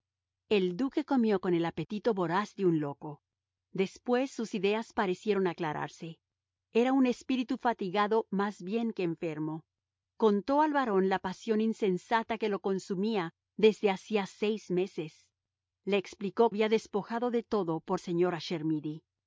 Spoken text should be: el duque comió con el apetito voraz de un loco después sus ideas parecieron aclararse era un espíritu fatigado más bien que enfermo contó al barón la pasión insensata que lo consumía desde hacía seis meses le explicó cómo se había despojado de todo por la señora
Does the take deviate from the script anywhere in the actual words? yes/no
yes